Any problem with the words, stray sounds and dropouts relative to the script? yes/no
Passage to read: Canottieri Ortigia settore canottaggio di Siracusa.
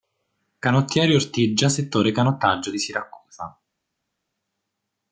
no